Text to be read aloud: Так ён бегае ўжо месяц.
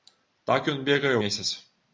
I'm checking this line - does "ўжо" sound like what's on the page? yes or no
no